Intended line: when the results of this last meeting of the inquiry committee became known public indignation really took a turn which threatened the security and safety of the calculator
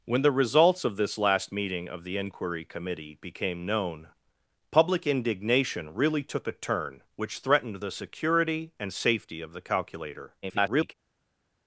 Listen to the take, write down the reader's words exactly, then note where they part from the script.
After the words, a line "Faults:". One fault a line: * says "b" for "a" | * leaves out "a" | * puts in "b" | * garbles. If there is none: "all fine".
when the results of this last meeting of the inquiry committee became known public indignation really took a turn which threatened the security and safety of the calculator [garbled]
Faults:
* garbles